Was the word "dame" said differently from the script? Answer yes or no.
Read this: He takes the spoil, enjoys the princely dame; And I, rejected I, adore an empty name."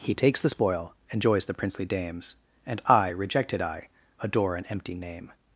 yes